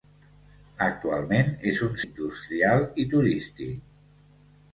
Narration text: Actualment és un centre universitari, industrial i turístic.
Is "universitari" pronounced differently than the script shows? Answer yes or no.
yes